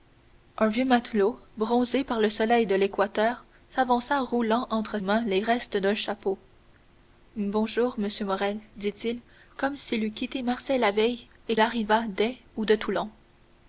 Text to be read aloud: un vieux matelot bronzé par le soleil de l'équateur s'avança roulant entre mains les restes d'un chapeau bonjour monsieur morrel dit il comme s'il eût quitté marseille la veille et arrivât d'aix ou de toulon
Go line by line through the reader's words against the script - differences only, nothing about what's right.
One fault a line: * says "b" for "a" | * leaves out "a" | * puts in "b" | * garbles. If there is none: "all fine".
all fine